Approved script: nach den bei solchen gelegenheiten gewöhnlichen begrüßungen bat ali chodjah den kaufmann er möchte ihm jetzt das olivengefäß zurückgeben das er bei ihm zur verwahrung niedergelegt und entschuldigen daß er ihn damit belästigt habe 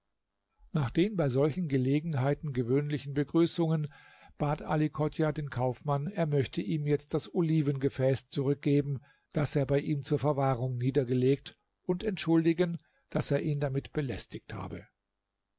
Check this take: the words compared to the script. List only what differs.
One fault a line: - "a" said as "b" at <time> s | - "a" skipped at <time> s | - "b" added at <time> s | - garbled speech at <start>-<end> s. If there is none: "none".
none